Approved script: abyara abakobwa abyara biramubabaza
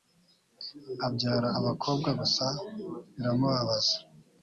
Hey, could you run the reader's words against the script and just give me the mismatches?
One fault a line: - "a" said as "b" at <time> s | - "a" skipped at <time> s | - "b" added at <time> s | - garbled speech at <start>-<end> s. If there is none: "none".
- "abyara" said as "gusa" at 2.2 s